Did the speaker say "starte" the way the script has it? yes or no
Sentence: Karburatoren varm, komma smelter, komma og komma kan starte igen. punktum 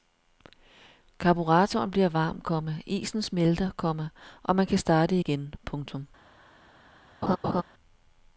yes